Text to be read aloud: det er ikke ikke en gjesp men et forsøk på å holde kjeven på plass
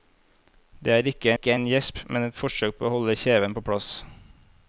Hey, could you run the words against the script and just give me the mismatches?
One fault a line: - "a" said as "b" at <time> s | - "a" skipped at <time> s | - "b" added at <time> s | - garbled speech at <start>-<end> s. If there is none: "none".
none